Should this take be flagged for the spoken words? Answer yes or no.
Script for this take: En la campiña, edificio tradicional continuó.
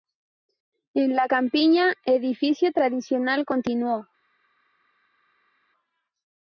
no